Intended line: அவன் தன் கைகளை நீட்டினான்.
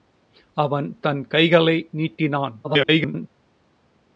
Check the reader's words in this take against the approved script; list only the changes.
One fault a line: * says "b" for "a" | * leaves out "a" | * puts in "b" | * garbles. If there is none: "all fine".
* garbles